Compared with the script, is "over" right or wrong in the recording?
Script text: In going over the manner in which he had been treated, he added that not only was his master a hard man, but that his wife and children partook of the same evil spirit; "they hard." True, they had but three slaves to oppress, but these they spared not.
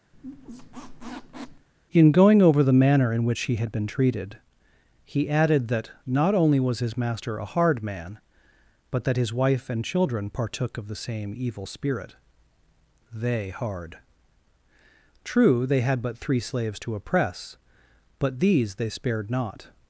right